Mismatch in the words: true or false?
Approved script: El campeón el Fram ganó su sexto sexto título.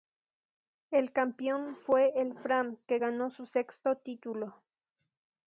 true